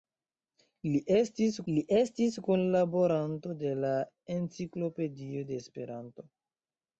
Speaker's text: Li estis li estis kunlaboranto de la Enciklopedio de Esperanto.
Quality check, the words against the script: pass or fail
pass